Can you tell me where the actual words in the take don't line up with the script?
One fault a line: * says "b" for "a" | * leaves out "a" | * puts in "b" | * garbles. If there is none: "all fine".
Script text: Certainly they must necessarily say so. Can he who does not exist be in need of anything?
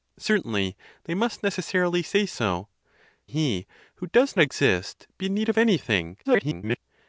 * leaves out "Can"
* leaves out "not"
* garbles